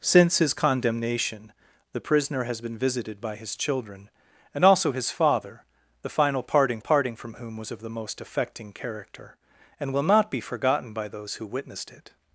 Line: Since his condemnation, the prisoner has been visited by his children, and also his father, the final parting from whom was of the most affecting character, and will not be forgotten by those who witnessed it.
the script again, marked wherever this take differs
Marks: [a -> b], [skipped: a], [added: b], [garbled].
Since his condemnation, the prisoner has been visited by his children, and also his father, the final parting [added: parting] from whom was of the most affecting character, and will not be forgotten by those who witnessed it.